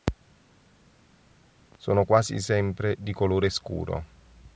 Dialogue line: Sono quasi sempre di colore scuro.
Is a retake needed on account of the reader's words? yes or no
no